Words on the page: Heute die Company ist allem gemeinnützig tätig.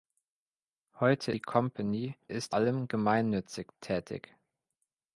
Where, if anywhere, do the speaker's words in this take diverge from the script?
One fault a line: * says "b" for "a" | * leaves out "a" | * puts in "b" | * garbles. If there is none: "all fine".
all fine